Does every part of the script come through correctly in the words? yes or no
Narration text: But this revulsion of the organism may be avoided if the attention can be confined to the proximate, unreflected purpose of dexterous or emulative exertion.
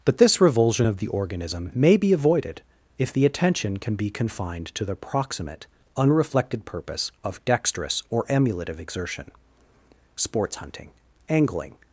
no